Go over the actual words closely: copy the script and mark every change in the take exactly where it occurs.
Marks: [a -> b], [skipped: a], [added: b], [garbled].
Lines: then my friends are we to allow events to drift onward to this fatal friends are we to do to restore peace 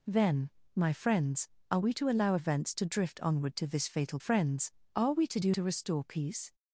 then my friends are we to allow events to drift onward to this fatal friends are we to do to restore peace